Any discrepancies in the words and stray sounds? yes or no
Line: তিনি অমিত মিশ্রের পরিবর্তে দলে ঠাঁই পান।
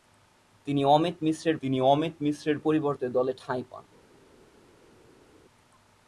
yes